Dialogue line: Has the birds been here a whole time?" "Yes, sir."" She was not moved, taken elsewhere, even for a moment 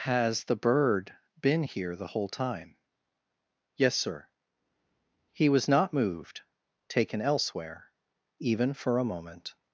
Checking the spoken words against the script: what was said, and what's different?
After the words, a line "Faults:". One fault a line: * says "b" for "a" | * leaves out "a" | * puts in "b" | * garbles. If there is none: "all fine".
Has the bird been here the whole time?" "Yes, sir."" He was not moved, taken elsewhere, even for a moment
Faults:
* says "bird" for "birds"
* says "the" for "a"
* says "He" for "She"